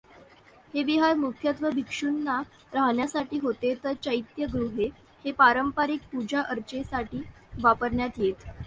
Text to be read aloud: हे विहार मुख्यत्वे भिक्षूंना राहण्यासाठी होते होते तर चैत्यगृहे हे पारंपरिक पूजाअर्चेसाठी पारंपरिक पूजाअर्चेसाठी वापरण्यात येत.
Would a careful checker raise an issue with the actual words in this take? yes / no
yes